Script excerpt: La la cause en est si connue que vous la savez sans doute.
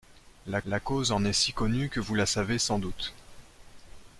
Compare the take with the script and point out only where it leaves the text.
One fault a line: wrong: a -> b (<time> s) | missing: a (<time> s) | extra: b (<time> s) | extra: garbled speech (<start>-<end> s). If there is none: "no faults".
no faults